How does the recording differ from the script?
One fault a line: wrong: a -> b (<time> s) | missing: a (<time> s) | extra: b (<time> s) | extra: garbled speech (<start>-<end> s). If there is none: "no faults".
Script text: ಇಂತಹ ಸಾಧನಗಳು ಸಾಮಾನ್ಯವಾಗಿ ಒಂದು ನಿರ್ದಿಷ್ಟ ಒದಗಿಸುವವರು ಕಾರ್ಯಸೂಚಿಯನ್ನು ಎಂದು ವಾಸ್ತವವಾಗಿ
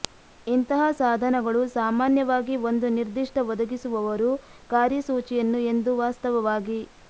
no faults